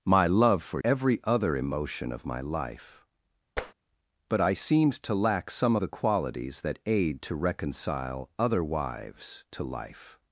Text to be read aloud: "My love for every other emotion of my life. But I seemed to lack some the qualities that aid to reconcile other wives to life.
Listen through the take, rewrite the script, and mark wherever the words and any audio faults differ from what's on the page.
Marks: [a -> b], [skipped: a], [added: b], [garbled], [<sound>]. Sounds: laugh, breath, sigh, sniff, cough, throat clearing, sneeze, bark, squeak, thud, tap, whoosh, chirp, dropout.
"My love for every other emotion of my life. [tap] But I seemed to lack some the qualities that aid to reconcile other wives to life.